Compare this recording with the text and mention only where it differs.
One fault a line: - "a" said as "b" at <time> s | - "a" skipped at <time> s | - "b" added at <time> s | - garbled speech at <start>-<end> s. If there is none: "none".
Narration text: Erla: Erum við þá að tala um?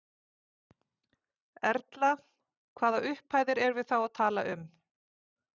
- "Hvaða upphæðir" added at 2.8 s